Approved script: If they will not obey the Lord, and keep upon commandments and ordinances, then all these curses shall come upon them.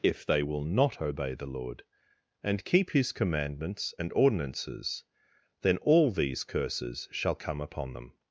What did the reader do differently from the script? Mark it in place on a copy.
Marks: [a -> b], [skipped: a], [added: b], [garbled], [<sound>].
If they will not obey the Lord, and keep [upon -> his] commandments and ordinances, then all these curses shall come upon them.